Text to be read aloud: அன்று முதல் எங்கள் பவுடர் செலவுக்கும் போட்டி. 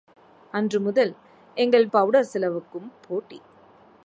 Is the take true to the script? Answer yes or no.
yes